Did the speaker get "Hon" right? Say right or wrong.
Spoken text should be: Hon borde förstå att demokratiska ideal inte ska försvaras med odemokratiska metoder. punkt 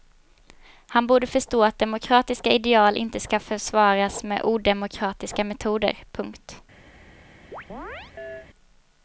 wrong